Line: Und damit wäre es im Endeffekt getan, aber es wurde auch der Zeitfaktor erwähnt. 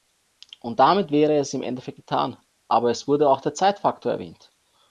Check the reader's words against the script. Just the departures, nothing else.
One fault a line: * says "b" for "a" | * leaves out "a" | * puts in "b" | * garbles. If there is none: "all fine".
all fine